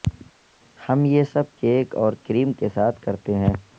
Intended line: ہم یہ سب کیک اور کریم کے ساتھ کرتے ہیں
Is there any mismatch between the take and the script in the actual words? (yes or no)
no